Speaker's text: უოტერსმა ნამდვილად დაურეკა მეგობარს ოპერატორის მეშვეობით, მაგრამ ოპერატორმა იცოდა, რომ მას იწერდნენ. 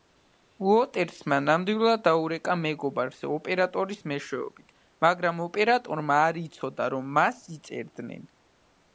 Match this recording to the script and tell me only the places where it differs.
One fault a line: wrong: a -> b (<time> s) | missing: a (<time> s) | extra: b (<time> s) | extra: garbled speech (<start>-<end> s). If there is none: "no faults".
extra: არ (6.3 s)